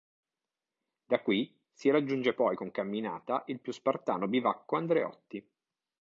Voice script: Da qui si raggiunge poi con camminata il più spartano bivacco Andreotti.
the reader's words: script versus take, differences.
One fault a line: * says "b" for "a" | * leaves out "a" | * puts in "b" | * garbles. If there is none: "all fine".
all fine